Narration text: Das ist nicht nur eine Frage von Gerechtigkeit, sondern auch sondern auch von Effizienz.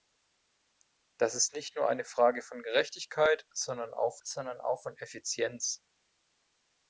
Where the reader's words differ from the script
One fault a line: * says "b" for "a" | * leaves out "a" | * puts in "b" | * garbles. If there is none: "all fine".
all fine